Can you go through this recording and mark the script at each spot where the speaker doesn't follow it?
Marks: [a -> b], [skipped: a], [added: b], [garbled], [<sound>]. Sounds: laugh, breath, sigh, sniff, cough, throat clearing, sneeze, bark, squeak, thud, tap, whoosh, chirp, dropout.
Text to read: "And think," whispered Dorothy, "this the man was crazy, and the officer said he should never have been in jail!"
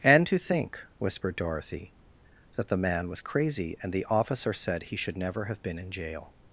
"And [added: to] think," whispered Dorothy, ["this -> that] the man was crazy, and the officer said he should never have been in jail!"